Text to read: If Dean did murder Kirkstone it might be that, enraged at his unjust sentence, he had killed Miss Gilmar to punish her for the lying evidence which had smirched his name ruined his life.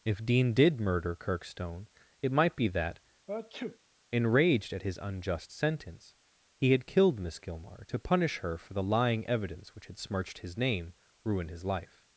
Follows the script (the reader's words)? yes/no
yes